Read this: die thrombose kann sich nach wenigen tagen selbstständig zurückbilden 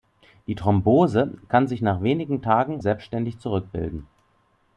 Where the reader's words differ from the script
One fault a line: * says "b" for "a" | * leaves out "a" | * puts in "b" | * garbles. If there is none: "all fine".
all fine